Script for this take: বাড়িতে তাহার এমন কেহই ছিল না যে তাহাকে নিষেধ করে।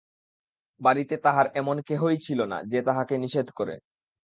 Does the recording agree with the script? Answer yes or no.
yes